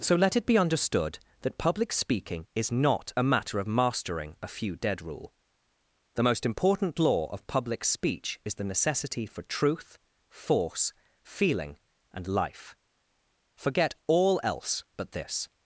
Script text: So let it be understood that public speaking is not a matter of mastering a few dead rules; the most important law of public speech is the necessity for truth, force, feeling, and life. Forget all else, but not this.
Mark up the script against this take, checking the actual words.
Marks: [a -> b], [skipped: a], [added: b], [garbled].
So let it be understood that public speaking is not a matter of mastering a few dead [rules; -> rule] the most important law of public speech is the necessity for truth, force, feeling, and life. Forget all else, but [skipped: not] this.